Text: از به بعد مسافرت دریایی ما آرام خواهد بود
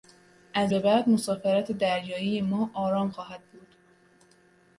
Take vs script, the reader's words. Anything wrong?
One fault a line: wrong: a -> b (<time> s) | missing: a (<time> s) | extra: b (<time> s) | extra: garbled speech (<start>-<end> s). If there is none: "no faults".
no faults